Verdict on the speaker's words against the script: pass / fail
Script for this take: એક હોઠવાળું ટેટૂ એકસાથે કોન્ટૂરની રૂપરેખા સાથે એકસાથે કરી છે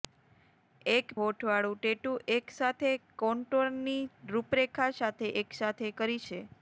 pass